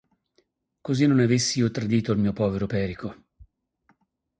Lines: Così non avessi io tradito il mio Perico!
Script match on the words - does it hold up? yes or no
no